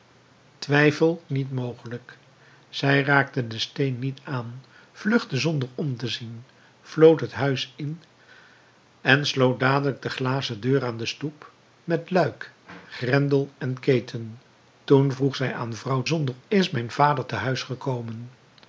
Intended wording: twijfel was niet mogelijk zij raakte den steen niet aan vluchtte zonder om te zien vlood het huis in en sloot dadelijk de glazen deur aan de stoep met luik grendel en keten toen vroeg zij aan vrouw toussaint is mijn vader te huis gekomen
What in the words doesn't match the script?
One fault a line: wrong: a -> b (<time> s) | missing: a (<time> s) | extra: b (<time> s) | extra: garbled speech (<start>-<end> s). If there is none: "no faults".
missing: was (1.2 s)
wrong: toussaint -> zonder (16.0 s)